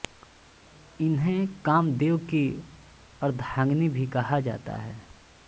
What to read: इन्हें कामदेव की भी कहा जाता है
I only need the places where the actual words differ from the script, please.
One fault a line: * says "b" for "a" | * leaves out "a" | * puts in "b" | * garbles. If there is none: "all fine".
* puts in "अर्धांगिनी"